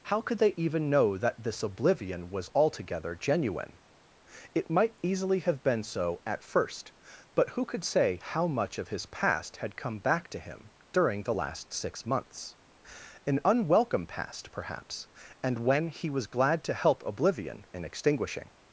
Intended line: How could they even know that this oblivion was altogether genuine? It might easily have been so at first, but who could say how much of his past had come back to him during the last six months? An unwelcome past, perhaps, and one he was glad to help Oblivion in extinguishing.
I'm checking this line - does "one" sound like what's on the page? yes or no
no